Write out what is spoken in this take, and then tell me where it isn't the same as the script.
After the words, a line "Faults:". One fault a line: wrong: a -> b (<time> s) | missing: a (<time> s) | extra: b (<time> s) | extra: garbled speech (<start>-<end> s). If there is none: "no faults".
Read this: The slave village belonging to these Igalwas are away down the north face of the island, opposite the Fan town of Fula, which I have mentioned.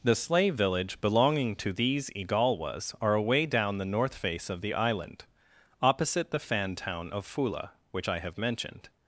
The slave village belonging to these Igalwas are away down the north face of the island, opposite the Fan town of Fula, which I have mentioned.
Faults:
no faults